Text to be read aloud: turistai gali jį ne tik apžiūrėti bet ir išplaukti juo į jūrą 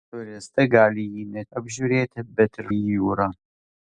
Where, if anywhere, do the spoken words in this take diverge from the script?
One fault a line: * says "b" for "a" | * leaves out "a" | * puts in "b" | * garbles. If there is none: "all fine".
* leaves out "tik"
* leaves out "išplaukti juo"